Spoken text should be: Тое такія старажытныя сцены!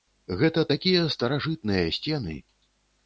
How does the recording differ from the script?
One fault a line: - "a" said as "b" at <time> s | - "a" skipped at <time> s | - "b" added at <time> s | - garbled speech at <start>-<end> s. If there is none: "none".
- "Тое" said as "Гэта" at 0.4 s